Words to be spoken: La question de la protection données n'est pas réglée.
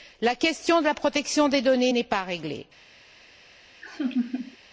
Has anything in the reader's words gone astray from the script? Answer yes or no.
yes